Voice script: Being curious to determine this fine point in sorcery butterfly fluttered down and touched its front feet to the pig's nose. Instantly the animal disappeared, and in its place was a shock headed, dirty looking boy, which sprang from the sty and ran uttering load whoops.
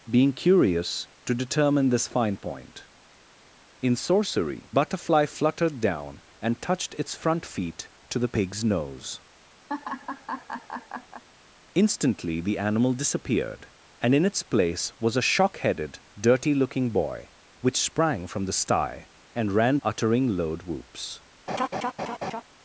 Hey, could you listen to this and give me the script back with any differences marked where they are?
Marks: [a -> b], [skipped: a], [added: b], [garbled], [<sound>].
Being curious to determine this fine point in sorcery butterfly fluttered down and touched its front feet to the pig's nose. [laugh] Instantly the animal disappeared, and in its place was a shock headed, dirty looking boy, which sprang from the sty and ran uttering load whoops. [laugh]